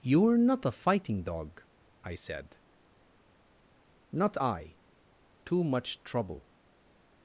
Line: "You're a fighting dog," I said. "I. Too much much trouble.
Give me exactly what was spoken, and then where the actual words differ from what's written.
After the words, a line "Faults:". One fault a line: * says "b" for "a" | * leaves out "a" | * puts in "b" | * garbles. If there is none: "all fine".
"You're not a fighting dog," I said. "Not I. Too much trouble.
Faults:
* puts in "not"
* puts in "Not"
* leaves out "much"